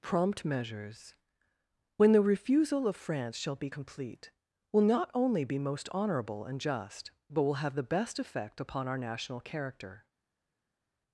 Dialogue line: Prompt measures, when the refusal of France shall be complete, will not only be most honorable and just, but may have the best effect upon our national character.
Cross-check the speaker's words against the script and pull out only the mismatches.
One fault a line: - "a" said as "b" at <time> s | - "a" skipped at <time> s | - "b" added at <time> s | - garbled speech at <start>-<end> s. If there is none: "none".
- "may" said as "will" at 7.4 s